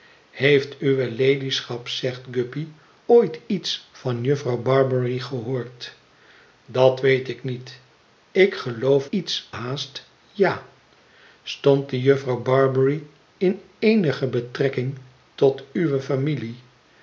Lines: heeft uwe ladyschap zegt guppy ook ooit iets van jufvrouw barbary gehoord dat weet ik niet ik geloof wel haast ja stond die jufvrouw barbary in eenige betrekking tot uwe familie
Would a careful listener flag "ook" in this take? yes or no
yes